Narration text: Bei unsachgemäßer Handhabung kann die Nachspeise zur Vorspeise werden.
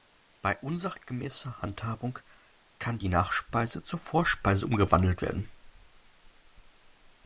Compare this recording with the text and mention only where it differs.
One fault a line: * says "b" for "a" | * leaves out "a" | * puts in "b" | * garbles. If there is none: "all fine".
* puts in "umgewandelt"